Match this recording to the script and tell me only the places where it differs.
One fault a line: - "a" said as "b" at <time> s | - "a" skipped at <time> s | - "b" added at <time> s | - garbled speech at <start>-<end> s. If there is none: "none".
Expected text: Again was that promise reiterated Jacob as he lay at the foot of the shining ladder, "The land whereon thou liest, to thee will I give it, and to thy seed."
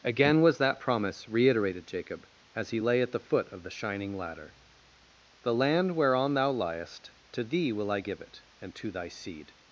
none